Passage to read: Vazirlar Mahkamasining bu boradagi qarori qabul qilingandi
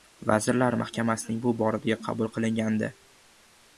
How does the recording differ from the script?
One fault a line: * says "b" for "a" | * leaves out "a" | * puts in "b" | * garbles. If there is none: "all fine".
* leaves out "qarori"